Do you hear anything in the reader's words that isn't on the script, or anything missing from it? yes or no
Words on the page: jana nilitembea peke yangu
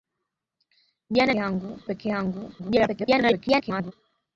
yes